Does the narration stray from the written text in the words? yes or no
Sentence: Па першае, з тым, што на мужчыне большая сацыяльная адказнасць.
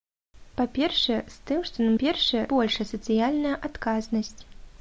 yes